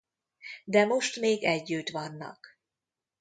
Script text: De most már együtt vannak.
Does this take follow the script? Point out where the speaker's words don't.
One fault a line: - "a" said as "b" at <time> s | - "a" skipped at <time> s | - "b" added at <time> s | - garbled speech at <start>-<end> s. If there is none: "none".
- "már" said as "még" at 1.2 s